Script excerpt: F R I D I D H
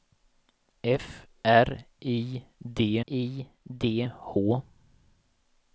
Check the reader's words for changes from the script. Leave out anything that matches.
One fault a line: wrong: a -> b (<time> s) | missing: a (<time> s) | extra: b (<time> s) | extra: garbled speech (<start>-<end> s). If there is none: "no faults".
no faults